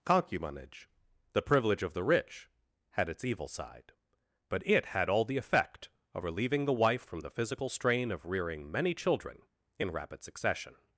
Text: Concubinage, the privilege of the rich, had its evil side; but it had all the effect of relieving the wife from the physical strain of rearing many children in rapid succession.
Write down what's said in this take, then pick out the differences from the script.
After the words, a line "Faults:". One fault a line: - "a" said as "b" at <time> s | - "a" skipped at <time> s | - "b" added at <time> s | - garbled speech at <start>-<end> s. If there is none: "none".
Concubinage, the privilege of the rich, had its evil side; but it had all the effect of relieving the wife from the physical strain of rearing many children in rapid succession.
Faults:
none